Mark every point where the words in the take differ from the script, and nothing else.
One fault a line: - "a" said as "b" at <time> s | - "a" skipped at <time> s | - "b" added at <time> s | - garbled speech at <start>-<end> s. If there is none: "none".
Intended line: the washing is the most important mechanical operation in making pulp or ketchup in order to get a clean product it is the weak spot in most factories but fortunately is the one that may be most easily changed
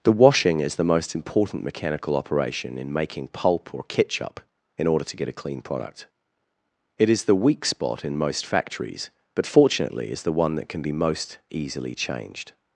- "may" said as "can" at 10.7 s